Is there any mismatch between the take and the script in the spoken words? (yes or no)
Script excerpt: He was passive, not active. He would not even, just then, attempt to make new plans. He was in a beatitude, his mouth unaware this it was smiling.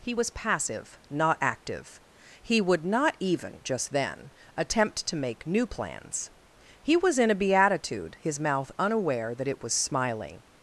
yes